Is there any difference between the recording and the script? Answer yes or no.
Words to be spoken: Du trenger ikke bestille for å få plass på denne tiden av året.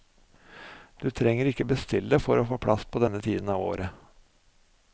no